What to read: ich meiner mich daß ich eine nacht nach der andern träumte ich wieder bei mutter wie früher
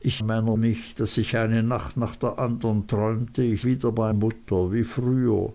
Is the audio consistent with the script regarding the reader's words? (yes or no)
yes